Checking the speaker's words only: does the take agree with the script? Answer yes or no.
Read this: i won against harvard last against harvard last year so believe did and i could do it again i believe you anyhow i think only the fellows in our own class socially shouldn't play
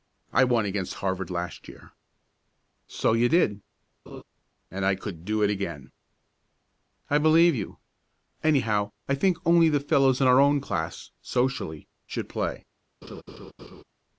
no